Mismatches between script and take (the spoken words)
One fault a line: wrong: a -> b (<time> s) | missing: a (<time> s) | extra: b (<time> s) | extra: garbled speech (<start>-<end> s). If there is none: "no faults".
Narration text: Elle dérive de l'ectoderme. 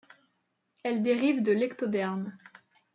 no faults